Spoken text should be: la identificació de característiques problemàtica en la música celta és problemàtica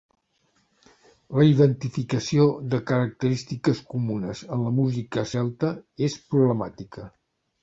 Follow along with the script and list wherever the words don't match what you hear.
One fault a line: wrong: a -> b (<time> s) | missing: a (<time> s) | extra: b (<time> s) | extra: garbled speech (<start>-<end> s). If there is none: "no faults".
wrong: problemàtica -> comunes (3.9 s)